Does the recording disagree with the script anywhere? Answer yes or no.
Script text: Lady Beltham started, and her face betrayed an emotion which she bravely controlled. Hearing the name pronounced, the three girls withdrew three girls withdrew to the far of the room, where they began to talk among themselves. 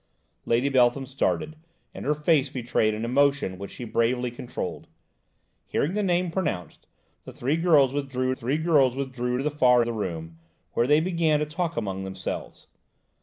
no